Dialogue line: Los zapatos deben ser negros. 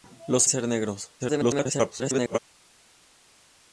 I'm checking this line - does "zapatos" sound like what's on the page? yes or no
no